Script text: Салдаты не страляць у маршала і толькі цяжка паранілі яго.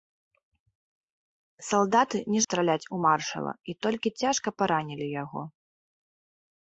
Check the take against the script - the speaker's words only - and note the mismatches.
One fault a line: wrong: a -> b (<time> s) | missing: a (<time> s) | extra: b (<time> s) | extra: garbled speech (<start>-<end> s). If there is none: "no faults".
no faults